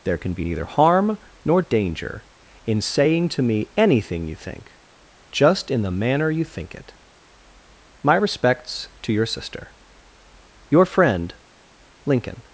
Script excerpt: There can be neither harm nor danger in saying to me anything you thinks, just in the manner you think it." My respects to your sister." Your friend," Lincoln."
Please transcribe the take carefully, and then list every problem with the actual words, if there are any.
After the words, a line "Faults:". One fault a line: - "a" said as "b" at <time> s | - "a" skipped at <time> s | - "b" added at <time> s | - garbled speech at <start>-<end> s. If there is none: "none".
There can be neither harm nor danger in saying to me anything you think, just in the manner you think it." My respects to your sister." Your friend," Lincoln."
Faults:
- "thinks" said as "think" at 4.4 s